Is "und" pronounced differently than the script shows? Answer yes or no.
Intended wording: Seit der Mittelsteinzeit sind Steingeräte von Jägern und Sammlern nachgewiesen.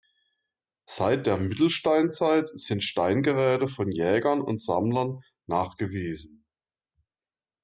no